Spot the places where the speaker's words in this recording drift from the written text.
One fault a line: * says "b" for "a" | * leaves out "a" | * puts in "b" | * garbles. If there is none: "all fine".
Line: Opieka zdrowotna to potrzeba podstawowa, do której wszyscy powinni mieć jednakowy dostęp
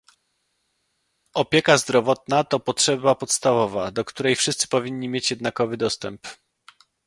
all fine